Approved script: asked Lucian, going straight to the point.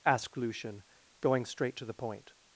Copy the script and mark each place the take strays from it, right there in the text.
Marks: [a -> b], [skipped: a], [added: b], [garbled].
asked Lucian, going straight to the point.